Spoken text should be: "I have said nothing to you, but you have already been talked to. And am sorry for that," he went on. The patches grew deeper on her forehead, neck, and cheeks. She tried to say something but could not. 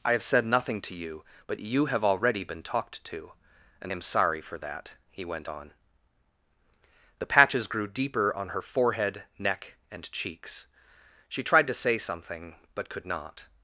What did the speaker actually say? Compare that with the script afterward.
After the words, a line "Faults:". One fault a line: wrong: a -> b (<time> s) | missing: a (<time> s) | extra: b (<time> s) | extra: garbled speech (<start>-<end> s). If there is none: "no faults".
"I have said nothing to you, but you have already been talked to. And am sorry for that," he went on. The patches grew deeper on her forehead, neck, and cheeks. She tried to say something but could not.
Faults:
no faults